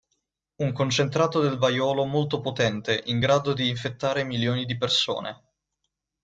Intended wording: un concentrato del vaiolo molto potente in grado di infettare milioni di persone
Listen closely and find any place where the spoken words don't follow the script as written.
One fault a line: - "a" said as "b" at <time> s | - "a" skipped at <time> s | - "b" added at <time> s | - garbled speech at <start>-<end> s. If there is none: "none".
none